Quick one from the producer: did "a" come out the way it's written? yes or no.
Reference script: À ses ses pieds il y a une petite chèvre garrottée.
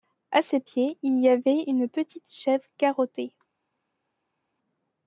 no